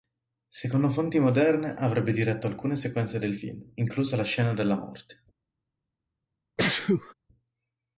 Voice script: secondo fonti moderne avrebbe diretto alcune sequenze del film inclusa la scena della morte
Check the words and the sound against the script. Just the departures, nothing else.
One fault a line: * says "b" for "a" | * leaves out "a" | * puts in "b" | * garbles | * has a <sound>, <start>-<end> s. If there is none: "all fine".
* has a sneeze, 6.6-7.1 s